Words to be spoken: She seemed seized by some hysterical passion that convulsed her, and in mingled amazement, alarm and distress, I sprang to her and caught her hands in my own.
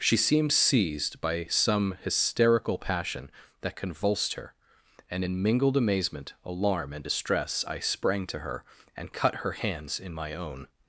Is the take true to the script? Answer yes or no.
no